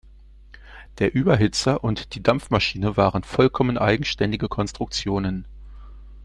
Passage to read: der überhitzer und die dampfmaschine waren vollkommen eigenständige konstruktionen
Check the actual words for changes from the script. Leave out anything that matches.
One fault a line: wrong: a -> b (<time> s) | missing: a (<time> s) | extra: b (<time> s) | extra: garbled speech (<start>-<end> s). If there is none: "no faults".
no faults